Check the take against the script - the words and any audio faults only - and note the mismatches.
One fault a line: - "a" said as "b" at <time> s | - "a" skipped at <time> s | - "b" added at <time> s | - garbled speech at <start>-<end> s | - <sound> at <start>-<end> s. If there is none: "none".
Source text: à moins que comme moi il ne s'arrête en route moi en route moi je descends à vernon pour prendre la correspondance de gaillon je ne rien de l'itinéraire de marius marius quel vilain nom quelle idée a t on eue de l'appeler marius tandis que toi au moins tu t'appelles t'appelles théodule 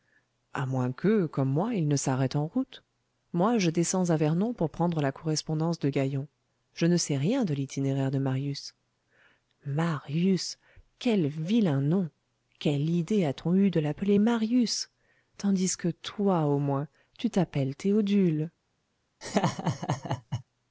- "en route moi" skipped at 3.6 s
- "sais" added at 7.0 s
- "t'appelles" skipped at 17.7 s
- laugh at 19.2-20.4 s